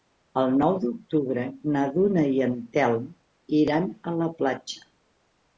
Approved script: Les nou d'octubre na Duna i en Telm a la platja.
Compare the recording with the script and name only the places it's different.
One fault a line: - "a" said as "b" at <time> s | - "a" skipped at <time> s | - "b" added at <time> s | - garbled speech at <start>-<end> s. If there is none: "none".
- "Les" said as "El" at 0.4 s
- "iran" added at 3.6 s